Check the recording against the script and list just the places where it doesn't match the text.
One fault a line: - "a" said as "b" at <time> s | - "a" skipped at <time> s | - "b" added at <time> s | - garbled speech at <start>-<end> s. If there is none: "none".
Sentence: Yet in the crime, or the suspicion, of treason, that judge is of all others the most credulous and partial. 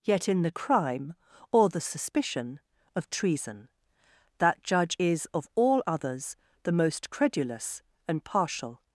none